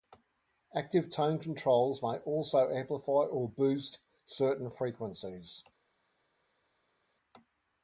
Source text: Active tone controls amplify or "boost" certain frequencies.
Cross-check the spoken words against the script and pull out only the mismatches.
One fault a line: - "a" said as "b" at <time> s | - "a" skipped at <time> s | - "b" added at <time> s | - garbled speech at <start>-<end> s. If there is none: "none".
- "may also" added at 2.0 s